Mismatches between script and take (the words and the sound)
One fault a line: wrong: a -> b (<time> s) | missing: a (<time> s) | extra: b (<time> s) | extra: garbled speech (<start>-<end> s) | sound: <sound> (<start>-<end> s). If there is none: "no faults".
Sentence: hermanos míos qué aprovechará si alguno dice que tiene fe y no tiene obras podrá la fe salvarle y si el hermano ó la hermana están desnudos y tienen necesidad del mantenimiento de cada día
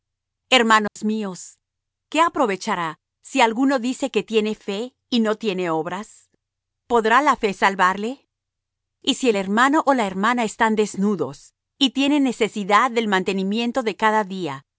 sound: dropout (0.9-1.0 s)